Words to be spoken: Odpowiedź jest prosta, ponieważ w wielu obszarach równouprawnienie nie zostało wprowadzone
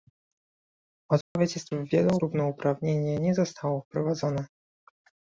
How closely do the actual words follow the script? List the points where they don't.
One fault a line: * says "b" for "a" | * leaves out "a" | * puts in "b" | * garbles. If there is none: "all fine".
* leaves out "prosta ponieważ"
* leaves out "obszarach"